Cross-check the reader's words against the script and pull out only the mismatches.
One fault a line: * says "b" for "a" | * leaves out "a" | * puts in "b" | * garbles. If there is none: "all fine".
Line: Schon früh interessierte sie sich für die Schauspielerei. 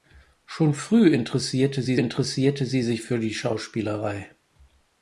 * puts in "interessierte sie"